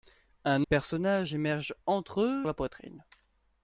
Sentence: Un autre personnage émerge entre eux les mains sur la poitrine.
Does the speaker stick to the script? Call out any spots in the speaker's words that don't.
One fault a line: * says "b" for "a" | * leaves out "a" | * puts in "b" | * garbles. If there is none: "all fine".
* leaves out "autre"
* leaves out "les mains sur"